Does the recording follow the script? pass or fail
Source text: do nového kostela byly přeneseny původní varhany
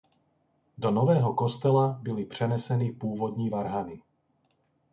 pass